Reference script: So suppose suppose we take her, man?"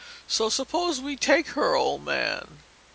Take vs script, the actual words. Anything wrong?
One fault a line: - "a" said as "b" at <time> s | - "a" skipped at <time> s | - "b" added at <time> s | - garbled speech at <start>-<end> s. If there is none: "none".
- "suppose" skipped at 1.0 s
- "old" added at 1.8 s